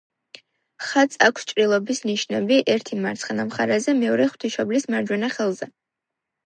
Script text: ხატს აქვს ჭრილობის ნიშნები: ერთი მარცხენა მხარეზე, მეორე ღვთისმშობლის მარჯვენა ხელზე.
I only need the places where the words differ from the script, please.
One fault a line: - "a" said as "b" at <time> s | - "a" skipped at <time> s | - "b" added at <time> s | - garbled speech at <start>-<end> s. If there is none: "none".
none